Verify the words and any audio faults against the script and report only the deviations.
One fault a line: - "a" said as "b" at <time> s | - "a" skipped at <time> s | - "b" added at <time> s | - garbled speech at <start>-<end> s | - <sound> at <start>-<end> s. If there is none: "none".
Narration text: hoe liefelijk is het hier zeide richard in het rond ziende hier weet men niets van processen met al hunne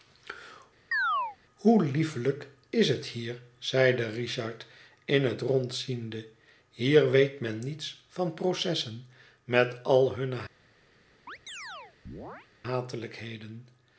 - chirp at 0.9-1.4 s
- chirp at 11.3-12.5 s